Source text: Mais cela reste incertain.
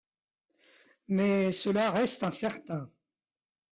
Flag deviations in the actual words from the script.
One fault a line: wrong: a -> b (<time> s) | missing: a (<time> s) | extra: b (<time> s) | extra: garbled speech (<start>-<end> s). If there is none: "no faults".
no faults